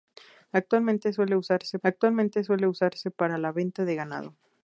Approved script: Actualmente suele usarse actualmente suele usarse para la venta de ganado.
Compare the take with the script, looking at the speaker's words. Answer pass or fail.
pass